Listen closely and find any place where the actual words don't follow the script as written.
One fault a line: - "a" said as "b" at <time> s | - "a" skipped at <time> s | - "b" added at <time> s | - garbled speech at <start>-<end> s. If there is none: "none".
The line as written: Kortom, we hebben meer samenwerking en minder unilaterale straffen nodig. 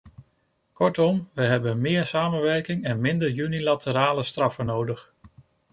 none